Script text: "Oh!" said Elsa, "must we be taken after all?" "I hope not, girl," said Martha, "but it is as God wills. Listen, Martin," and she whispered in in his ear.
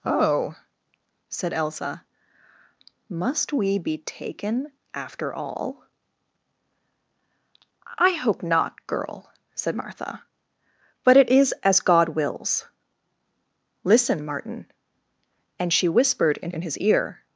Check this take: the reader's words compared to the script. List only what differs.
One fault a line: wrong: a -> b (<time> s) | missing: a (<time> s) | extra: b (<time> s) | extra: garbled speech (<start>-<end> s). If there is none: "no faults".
no faults